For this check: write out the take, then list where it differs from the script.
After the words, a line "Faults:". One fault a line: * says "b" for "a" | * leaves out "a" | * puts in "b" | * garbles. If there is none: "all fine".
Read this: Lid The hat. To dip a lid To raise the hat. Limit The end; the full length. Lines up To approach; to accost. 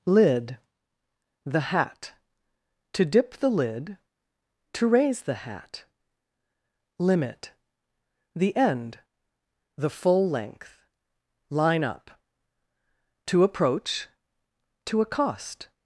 Lid The hat. To dip the lid To raise the hat. Limit The end; the full length. Line up To approach; to accost.
Faults:
* says "the" for "a"
* says "Line" for "Lines"